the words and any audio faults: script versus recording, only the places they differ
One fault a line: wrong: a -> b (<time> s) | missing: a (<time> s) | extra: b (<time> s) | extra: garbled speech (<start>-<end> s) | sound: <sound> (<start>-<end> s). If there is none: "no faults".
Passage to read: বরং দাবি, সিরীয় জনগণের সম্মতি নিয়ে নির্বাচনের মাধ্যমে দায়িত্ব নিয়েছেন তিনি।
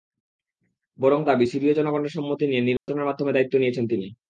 sound: dropout (2.8-2.9 s)